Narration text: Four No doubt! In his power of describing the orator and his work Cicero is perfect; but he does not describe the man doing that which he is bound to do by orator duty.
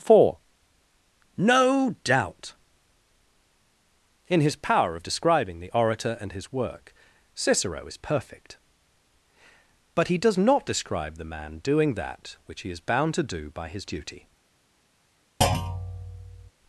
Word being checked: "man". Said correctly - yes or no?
yes